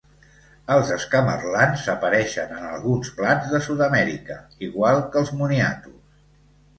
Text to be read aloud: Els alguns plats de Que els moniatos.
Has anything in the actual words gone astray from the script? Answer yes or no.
yes